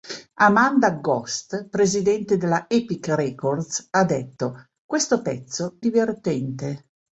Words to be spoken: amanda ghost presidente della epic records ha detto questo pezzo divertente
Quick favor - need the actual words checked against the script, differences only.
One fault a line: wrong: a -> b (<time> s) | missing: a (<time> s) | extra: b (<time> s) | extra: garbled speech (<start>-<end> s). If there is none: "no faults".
no faults